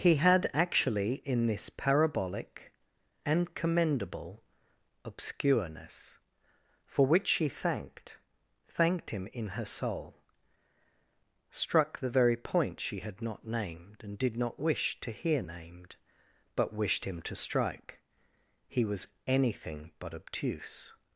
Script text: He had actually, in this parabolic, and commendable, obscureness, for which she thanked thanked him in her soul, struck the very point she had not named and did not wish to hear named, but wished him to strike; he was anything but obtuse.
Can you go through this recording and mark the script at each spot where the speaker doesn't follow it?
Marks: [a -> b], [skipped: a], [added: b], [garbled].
He had actually, in this parabolic, and commendable, obscureness, for which she thanked thanked him in her soul, struck the very point she had not named and did not wish to hear named, but wished him to strike; he was anything but obtuse.